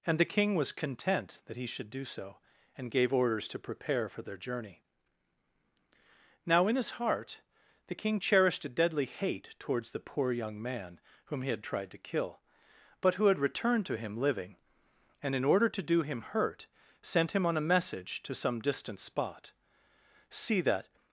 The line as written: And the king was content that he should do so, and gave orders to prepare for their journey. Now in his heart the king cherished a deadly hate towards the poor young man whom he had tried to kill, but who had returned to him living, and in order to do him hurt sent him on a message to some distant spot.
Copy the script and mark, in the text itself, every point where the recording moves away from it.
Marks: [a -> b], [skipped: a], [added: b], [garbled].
And the king was content that he should do so, and gave orders to prepare for their journey. Now in his heart the king cherished a deadly hate towards the poor young man whom he had tried to kill, but who had returned to him living, and in order to do him hurt sent him on a message to some distant spot. [added: See that]